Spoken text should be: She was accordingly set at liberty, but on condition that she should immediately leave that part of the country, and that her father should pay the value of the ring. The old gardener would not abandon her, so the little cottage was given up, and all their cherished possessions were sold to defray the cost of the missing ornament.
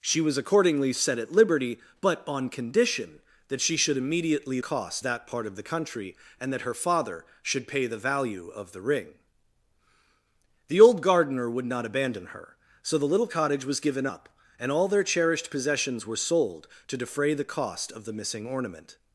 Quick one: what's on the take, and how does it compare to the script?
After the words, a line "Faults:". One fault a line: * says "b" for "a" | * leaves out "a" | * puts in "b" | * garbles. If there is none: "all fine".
She was accordingly set at liberty, but on condition that she should immediately cost that part of the country, and that her father should pay the value of the ring. The old gardener would not abandon her, so the little cottage was given up, and all their cherished possessions were sold to defray the cost of the missing ornament.
Faults:
* says "cost" for "leave"